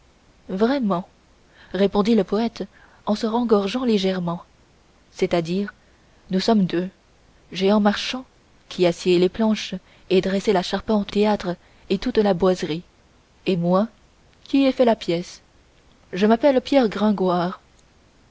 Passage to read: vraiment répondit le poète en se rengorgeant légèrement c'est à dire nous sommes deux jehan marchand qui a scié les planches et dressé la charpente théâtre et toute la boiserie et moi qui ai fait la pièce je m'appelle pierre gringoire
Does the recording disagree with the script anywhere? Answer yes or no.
no